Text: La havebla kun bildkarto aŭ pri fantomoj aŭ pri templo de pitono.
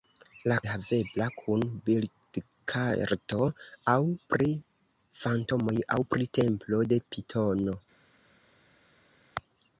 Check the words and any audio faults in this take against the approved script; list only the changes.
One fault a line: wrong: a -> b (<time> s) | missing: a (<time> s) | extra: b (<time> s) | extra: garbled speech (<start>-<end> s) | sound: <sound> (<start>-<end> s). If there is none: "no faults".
no faults